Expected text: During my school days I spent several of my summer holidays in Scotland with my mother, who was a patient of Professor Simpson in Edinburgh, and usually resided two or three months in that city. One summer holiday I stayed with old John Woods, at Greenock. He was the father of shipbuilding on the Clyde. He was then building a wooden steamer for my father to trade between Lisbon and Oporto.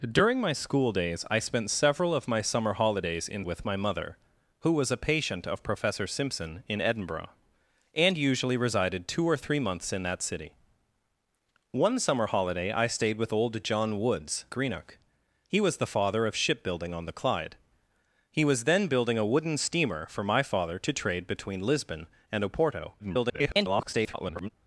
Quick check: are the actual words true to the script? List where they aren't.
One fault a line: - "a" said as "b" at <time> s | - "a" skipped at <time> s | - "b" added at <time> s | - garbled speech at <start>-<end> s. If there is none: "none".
- "Scotland" skipped at 3.5 s
- "at" skipped at 14.5 s
- garbled speech at 23.0-24.5 s